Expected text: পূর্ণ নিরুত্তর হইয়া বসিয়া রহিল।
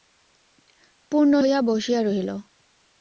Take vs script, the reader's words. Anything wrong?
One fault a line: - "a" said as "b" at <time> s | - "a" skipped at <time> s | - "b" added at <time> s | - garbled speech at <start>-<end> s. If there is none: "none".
- "নিরুত্তর" skipped at 1.3 s